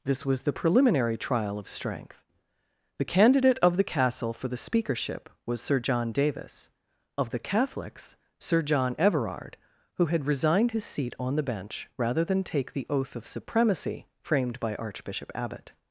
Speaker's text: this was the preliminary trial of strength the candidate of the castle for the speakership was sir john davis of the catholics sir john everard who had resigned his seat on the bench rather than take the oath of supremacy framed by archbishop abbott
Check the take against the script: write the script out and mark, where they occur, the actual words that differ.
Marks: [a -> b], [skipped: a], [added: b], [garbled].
this was the preliminary trial of strength the candidate of the castle for the speakership was sir john davis of the catholics sir john everard who had resigned his seat on the bench rather than take the oath of supremacy framed by archbishop abbott